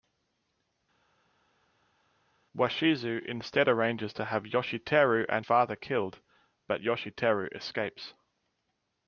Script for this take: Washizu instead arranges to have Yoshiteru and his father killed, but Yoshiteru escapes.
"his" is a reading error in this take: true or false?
true